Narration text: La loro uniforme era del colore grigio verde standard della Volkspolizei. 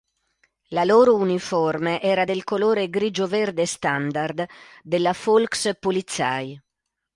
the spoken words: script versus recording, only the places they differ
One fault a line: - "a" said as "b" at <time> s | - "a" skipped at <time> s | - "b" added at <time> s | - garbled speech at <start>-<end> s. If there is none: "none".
none